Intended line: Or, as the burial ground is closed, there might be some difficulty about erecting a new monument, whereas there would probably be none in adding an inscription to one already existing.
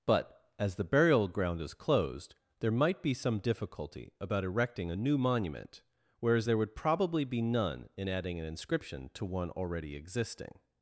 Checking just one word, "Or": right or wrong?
wrong